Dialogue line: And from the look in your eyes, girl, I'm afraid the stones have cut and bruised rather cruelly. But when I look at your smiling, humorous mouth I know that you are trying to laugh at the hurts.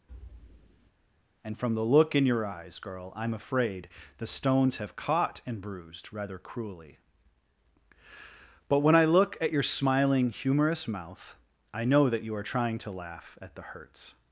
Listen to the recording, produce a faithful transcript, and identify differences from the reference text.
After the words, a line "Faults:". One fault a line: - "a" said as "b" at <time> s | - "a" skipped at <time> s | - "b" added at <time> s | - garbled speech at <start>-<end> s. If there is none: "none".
And from the look in your eyes, girl, I'm afraid the stones have caught and bruised rather cruelly. But when I look at your smiling, humorous mouth I know that you are trying to laugh at the hurts.
Faults:
- "cut" said as "caught" at 5.0 s